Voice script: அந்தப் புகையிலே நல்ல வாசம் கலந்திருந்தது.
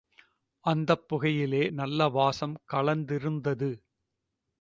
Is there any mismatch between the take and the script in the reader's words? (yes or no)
no